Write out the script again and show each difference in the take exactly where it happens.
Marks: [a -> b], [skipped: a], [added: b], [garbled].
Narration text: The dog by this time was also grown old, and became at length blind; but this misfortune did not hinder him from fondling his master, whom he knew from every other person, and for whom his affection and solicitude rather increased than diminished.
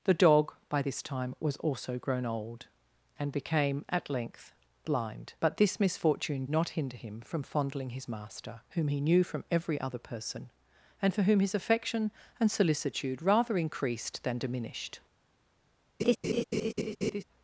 The dog by this time was also grown old, and became at length blind; but this misfortune [skipped: did] not hinder him from fondling his master, whom he knew from every other person, and for whom his affection and solicitude rather increased than diminished.